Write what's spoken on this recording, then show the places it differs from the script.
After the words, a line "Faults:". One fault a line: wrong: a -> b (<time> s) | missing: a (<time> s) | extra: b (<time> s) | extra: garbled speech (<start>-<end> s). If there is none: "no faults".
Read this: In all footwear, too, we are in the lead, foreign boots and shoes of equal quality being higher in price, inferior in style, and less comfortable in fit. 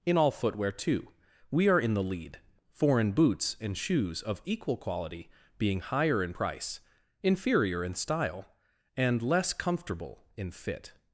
In all footwear, too, we are in the lead, foreign boots and shoes of equal quality being higher in price, inferior in style, and less comfortable in fit.
Faults:
no faults